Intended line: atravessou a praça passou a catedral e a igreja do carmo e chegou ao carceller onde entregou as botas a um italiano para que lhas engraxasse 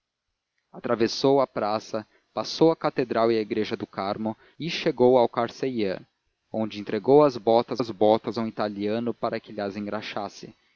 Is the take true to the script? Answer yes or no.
no